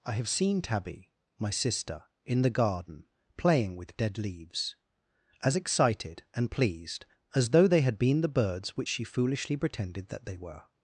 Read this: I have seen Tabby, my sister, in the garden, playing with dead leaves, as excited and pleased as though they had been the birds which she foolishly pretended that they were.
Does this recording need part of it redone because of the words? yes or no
no